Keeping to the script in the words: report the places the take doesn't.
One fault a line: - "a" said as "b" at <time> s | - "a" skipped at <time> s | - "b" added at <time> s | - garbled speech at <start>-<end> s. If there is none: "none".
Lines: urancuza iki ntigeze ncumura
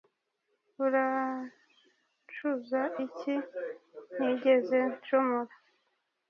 none